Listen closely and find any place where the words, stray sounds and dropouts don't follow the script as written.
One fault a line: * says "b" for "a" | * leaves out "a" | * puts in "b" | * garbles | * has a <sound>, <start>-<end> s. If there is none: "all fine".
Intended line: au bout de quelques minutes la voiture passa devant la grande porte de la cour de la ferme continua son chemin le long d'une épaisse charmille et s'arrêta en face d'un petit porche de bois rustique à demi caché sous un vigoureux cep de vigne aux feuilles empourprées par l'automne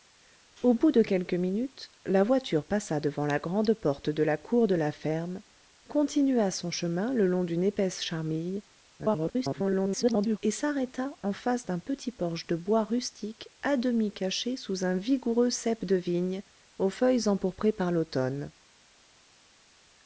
* garbles